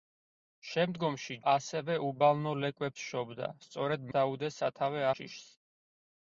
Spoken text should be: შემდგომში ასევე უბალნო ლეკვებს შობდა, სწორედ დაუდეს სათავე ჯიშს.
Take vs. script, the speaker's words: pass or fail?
pass